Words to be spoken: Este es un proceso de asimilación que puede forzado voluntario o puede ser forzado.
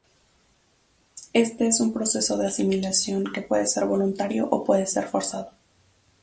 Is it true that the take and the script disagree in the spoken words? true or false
true